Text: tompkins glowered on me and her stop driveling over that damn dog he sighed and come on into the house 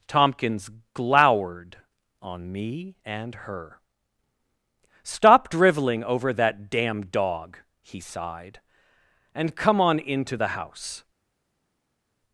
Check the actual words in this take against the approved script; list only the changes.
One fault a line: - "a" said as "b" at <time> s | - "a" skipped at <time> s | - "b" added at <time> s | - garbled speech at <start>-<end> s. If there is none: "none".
none